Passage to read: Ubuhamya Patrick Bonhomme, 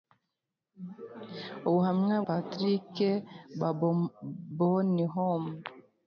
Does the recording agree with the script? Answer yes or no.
yes